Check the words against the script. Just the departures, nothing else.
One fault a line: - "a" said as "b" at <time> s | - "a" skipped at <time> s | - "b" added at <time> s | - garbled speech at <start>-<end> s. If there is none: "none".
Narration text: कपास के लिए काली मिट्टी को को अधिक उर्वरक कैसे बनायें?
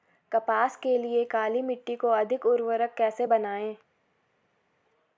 - "को" skipped at 2.1 s